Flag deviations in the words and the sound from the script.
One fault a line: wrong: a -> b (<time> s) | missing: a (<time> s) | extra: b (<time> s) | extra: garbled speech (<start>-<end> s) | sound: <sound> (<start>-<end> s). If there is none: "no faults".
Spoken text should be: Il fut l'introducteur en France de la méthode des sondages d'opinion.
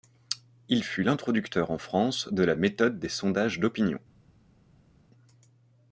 no faults